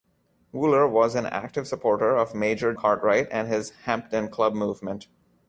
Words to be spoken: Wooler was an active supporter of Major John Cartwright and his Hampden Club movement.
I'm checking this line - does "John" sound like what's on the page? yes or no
no